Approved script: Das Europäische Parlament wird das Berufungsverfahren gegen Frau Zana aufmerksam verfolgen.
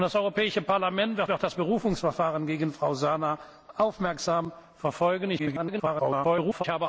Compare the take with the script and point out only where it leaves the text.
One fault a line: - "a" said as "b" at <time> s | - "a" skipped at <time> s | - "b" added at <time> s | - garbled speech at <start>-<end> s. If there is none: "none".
- "wird" added at 1.3 s
- garbled speech at 5.4-6.6 s